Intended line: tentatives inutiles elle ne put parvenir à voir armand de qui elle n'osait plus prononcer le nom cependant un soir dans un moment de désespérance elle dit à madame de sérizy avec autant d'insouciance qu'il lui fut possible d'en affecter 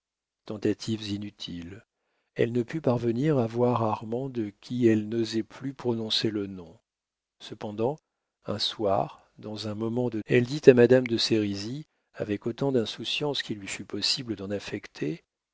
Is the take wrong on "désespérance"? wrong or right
wrong